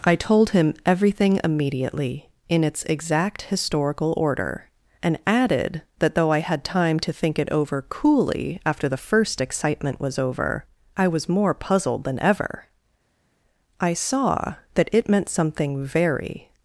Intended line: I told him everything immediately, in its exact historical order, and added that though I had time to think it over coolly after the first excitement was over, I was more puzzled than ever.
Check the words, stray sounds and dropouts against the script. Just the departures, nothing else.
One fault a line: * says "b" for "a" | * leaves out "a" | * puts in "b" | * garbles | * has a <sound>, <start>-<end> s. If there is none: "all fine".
* puts in "I saw that it meant something very"